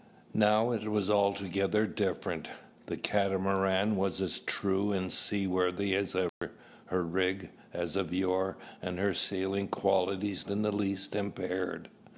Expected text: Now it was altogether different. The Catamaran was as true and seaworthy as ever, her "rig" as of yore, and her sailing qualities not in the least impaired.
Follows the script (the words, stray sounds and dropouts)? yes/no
no